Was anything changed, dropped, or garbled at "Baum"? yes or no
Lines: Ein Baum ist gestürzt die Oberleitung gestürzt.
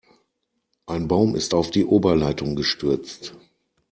no